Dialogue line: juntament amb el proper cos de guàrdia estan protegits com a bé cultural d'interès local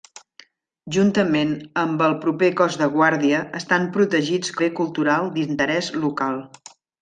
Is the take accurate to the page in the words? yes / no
no